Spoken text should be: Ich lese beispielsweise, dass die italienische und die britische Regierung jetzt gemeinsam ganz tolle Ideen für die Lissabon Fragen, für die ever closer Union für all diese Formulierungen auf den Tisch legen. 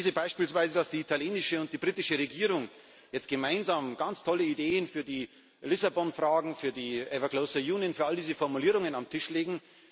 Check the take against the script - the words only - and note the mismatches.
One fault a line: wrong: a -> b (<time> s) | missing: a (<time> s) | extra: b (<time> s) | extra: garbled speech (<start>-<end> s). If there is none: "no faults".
no faults